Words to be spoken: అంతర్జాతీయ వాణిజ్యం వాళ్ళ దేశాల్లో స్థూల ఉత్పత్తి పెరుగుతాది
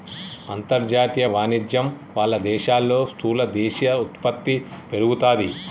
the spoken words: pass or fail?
fail